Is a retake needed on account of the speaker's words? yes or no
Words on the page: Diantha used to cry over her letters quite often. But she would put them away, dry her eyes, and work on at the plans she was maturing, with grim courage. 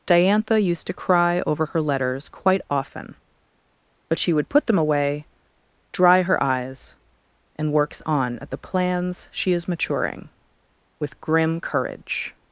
yes